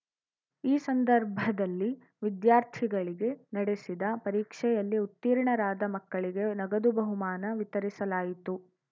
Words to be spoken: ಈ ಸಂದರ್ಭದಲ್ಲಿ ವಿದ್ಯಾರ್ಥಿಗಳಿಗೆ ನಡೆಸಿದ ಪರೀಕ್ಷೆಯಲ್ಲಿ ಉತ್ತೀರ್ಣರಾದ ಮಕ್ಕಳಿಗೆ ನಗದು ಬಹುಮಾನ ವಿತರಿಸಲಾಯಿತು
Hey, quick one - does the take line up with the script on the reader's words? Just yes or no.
yes